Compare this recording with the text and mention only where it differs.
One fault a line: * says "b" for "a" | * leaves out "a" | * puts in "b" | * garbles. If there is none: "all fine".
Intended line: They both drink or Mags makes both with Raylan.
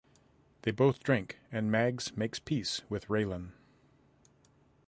* says "and" for "or"
* says "peace" for "both"